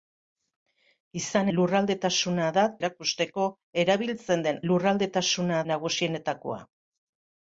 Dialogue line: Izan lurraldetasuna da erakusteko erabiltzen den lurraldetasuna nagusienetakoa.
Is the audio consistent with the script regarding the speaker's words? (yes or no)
yes